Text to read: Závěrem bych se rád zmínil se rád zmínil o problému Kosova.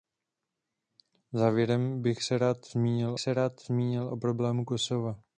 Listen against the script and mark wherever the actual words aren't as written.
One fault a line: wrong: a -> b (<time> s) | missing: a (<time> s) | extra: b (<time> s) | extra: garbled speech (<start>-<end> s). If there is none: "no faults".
no faults